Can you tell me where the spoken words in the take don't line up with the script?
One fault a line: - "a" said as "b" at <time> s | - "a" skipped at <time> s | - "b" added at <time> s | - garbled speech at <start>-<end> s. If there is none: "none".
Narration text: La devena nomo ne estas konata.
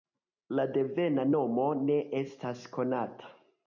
none